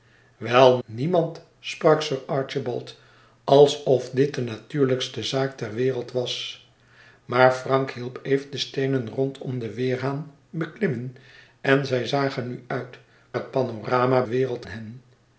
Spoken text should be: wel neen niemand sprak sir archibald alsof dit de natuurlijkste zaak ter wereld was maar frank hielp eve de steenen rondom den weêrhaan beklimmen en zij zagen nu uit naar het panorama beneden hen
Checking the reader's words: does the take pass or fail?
fail